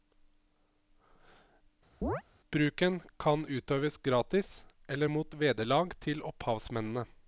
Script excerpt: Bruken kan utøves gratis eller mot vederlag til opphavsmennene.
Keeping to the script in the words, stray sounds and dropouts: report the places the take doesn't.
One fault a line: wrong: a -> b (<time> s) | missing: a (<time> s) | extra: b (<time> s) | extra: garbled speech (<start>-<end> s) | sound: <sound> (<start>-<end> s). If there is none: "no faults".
sound: chirp (2.0-2.2 s)